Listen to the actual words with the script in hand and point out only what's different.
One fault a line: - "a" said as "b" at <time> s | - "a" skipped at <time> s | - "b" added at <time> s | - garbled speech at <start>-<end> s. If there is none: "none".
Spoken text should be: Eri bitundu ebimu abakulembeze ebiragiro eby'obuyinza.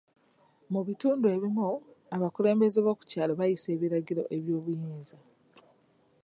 - "Eri" said as "Mu" at 0.7 s
- "b'oku kyalo bayisa" added at 2.8 s